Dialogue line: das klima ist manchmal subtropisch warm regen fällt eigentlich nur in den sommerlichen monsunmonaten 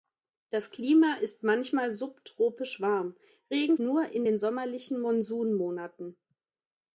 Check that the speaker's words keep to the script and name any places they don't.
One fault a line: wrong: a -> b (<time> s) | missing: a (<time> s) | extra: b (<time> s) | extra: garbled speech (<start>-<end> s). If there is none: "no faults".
missing: fällt eigentlich (3.8 s)